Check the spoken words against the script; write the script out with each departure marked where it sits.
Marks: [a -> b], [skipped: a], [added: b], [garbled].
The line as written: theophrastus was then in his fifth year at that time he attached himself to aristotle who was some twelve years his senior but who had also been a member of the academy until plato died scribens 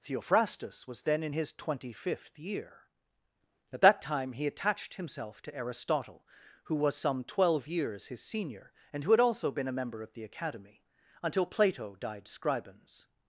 theophrastus was then in his [added: twenty] fifth year at that time he attached himself to aristotle who was some twelve years his senior [but -> and] who had also been a member of the academy until plato died scribens